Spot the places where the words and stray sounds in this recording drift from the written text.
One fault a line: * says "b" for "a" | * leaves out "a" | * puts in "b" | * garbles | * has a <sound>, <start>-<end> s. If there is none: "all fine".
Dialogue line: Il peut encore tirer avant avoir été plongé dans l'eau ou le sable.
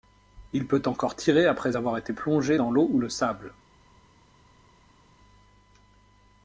* says "après" for "avant"